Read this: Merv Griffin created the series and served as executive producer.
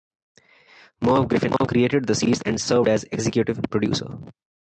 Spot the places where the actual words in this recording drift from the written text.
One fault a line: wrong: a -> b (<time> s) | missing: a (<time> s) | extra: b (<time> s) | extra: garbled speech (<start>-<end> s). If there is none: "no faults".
no faults